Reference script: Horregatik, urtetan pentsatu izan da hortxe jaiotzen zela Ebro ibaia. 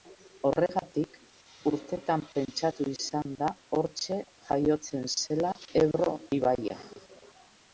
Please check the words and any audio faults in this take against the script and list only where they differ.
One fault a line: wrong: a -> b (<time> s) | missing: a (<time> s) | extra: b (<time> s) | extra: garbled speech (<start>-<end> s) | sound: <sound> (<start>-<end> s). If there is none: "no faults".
no faults